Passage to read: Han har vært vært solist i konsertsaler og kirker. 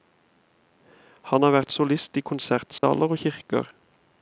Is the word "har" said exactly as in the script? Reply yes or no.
yes